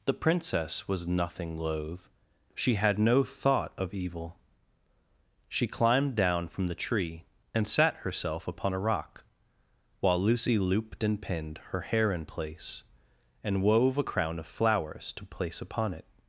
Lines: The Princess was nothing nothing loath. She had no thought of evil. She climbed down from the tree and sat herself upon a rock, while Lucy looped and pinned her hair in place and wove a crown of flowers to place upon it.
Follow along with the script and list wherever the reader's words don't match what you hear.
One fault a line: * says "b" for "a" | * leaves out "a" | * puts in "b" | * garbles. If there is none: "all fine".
* leaves out "nothing"